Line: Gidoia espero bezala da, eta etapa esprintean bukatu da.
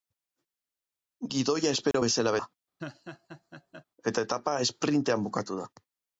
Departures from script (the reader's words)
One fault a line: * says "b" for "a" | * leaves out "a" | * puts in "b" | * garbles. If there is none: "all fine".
all fine